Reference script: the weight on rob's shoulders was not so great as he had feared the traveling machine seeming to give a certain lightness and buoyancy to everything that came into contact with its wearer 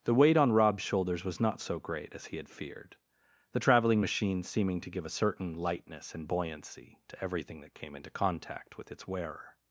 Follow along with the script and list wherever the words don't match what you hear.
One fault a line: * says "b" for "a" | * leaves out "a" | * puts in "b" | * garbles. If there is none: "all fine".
all fine